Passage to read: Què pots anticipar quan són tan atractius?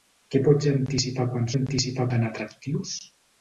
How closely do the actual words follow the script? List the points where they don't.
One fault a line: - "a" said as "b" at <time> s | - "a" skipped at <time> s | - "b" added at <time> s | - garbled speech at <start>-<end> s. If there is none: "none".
- "són" said as "anticipar" at 1.5 s